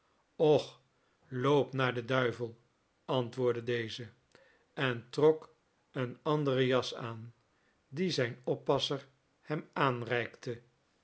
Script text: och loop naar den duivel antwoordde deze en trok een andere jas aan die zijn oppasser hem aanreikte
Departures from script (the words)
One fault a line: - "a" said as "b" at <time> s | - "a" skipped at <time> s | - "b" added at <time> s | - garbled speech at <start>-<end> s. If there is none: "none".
none